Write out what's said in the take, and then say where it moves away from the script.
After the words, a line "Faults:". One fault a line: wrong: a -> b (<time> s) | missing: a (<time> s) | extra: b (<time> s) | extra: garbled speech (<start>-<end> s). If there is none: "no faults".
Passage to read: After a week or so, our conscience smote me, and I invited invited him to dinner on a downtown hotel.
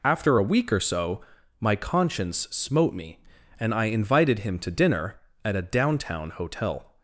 After a week or so, my conscience smote me, and I invited him to dinner at a downtown hotel.
Faults:
wrong: our -> my (1.6 s)
missing: invited (4.4 s)
wrong: on -> at (5.4 s)